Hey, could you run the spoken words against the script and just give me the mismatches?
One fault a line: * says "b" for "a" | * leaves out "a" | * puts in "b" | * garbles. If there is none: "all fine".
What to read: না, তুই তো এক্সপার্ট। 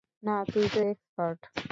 all fine